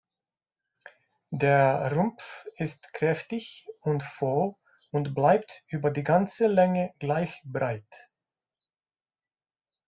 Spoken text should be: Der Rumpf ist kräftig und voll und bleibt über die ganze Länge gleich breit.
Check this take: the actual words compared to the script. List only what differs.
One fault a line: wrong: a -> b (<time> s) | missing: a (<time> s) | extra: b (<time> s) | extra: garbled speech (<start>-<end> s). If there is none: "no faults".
no faults